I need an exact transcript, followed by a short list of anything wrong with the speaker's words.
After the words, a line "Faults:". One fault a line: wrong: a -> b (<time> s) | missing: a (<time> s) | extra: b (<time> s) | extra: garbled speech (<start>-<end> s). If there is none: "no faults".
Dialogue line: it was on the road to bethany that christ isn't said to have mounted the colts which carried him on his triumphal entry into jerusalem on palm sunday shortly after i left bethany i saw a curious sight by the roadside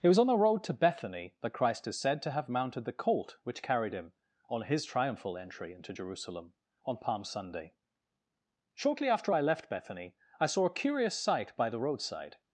it was on the road to bethany that christ is said to have mounted the colt which carried him on his triumphal entry into jerusalem on palm sunday shortly after i left bethany i saw a curious sight by the roadside
Faults:
wrong: isn't -> is (1.9 s)
wrong: colts -> colt (2.9 s)